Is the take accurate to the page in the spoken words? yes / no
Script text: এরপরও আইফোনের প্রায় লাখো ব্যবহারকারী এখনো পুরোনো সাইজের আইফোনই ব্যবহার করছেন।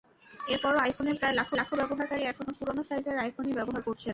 no